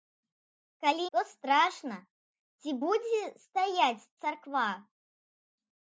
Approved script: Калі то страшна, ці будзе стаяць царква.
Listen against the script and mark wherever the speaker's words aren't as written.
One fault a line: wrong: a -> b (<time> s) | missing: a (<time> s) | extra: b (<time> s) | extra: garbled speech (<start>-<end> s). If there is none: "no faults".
no faults